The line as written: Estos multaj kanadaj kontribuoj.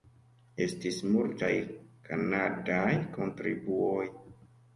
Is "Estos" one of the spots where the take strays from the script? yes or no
yes